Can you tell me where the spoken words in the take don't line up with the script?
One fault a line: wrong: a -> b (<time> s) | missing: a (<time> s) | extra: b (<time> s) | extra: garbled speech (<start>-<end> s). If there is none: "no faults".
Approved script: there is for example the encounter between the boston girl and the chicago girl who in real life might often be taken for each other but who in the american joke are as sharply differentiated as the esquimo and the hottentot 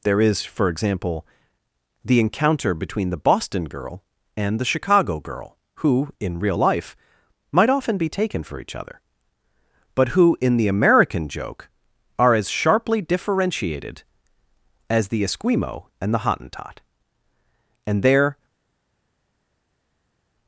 extra: and there (17.9 s)